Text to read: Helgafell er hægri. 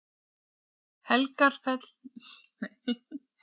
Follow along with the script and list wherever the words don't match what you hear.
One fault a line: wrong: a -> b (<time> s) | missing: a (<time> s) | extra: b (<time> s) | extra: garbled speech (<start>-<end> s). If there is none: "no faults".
extra: til (1.8 s)